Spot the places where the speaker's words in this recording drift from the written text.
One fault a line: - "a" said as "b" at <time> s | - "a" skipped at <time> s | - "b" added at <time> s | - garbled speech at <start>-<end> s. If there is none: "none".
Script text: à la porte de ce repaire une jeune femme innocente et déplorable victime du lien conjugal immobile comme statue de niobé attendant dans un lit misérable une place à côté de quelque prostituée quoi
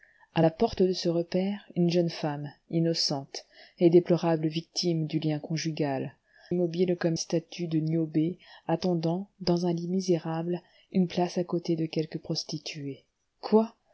none